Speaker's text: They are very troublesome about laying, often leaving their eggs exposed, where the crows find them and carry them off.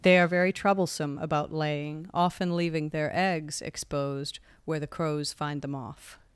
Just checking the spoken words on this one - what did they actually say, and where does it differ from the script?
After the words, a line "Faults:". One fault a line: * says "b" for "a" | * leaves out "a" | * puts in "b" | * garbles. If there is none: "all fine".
They are very troublesome about laying, often leaving their eggs exposed, where the crows find them off.
Faults:
* leaves out "and carry them"